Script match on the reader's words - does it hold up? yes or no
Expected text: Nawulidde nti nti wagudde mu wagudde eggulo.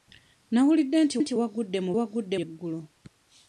yes